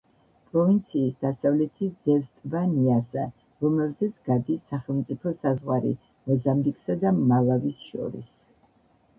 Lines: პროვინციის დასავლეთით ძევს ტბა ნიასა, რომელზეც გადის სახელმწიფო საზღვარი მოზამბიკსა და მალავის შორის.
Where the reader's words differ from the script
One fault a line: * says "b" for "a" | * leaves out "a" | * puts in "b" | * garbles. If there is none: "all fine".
all fine